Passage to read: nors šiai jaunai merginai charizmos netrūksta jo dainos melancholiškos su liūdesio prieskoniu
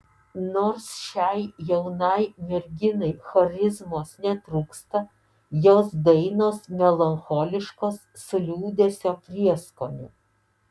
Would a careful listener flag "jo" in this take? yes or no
yes